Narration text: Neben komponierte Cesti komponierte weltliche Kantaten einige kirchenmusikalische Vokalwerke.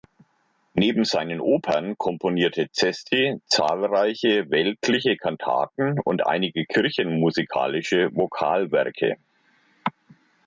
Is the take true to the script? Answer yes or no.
no